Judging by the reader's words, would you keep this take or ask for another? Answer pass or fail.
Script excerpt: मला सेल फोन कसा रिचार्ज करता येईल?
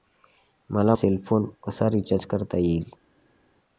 pass